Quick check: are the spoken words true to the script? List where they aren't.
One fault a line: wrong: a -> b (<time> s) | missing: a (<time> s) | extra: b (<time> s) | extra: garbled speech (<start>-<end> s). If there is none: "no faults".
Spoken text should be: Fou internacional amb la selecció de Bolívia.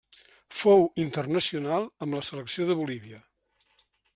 no faults